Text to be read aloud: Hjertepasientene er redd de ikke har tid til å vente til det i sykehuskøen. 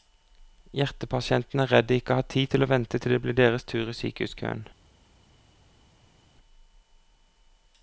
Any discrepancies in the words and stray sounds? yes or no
yes